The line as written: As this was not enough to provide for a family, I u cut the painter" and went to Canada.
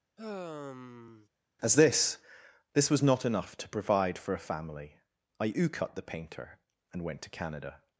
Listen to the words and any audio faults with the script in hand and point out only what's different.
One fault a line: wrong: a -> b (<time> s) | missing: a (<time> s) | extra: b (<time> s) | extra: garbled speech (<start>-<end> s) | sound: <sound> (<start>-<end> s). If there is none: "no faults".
sound: sigh (0.2-1.3 s)
extra: this (2.7 s)